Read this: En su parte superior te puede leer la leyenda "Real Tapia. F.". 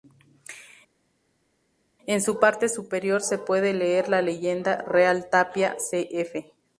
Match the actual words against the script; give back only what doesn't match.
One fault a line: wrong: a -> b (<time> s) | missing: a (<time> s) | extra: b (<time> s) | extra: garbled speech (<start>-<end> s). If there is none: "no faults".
wrong: te -> se (3.2 s)
extra: C (5.8 s)